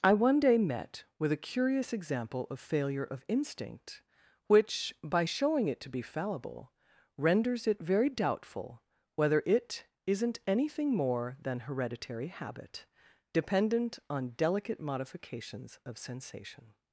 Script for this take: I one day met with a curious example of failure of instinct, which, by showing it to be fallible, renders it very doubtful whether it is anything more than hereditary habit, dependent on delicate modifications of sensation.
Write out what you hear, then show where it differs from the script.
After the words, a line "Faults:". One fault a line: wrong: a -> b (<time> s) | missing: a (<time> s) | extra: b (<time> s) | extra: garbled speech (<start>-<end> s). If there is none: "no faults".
I one day met with a curious example of failure of instinct, which, by showing it to be fallible, renders it very doubtful whether it isn't anything more than hereditary habit, dependent on delicate modifications of sensation.
Faults:
wrong: is -> isn't (10.1 s)